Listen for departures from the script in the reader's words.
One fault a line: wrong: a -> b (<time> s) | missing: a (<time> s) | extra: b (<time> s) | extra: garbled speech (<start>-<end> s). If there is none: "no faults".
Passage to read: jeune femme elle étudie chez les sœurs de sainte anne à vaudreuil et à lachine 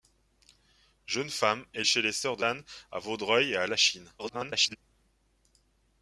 missing: étudie (1.9 s)
missing: sainte (2.4 s)
extra: garbled speech (4.2-4.8 s)